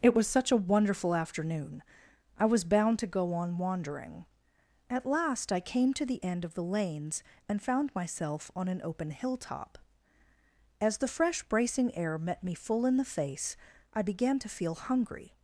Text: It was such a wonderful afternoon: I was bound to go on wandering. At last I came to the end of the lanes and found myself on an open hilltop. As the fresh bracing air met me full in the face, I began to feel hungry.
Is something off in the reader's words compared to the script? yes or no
no